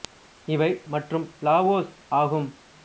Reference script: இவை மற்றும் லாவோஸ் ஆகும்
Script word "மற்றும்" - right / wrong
right